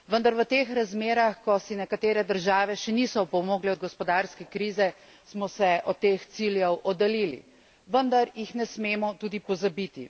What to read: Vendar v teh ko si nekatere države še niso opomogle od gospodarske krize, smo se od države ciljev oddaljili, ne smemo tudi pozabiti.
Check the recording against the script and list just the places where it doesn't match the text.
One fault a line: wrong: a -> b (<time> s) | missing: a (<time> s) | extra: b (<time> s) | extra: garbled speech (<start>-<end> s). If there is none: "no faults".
extra: razmerah (0.7 s)
wrong: države -> teh (6.0 s)
extra: vendar jih (7.9 s)